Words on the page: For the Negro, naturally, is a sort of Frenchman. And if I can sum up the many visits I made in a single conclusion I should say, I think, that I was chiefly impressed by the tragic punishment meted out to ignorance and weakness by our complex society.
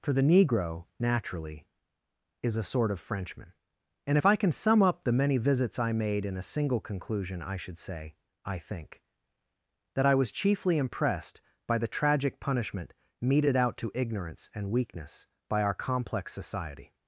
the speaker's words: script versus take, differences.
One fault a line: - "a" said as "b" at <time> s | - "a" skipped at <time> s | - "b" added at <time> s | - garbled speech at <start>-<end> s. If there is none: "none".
none